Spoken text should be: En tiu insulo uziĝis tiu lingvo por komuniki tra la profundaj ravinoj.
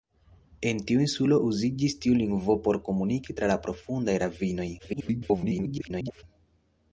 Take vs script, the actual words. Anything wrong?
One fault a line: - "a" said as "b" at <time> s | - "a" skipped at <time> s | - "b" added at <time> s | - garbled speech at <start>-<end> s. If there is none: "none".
- garbled speech at 4.8-6.2 s